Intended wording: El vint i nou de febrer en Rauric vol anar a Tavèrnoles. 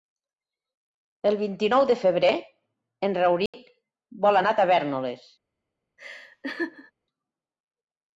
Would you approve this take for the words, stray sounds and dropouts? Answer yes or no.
no